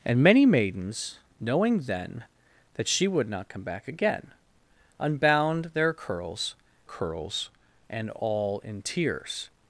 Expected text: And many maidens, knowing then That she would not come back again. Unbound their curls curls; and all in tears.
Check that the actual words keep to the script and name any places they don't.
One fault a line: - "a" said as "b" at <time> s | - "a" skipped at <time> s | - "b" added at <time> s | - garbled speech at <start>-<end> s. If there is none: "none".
none